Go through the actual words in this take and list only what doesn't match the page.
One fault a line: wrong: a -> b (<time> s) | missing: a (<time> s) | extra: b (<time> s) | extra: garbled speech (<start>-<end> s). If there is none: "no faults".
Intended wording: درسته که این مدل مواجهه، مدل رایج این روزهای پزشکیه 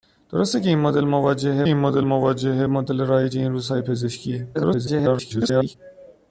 extra: این مدل مواجهه (1.7 s)
extra: garbled speech (4.5-5.8 s)